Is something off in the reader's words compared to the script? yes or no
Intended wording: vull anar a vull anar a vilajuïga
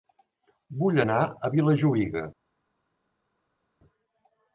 yes